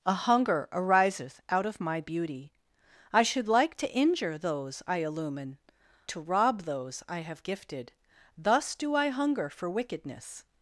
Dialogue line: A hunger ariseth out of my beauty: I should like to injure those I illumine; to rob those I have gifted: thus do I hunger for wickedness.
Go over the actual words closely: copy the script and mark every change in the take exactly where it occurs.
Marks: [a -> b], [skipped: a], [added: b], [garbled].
A hunger ariseth out of my beauty: I should like to injure those I illumine; to rob those I have gifted: thus do I hunger for wickedness.